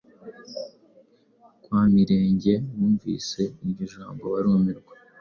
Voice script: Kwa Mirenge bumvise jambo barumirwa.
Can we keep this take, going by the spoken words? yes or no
no